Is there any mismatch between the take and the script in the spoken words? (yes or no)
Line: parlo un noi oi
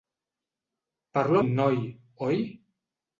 no